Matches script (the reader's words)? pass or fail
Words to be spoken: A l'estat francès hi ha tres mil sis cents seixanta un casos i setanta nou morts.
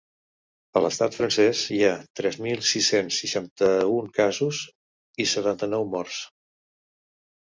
pass